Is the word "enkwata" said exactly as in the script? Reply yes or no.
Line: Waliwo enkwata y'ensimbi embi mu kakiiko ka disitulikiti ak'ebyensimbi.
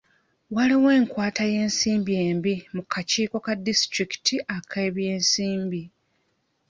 yes